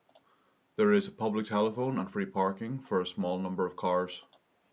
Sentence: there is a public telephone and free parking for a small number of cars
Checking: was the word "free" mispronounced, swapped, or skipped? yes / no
no